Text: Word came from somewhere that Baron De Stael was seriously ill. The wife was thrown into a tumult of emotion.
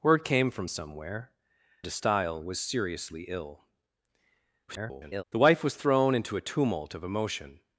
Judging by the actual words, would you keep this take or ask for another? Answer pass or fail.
fail